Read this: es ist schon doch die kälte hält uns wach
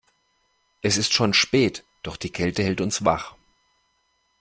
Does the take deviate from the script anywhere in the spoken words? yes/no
yes